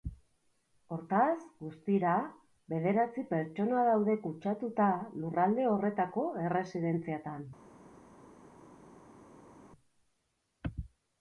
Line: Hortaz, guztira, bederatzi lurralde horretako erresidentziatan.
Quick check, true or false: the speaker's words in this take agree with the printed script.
false